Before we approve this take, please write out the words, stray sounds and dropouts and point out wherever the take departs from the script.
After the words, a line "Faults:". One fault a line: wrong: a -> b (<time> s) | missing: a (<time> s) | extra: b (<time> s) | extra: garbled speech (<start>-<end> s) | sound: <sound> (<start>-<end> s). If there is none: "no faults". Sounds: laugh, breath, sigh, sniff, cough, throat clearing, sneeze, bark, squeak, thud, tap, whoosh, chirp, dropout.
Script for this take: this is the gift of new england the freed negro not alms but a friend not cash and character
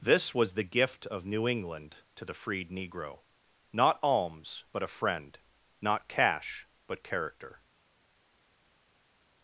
this was the gift of new england to the freed negro not alms but a friend not cash but character
Faults:
wrong: is -> was (0.3 s)
extra: to (2.1 s)
wrong: and -> but (6.9 s)